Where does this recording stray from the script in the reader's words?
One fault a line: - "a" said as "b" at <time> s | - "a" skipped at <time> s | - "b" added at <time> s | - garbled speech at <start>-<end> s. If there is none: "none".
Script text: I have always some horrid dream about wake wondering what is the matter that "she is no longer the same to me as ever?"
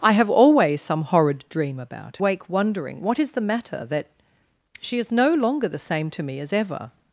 none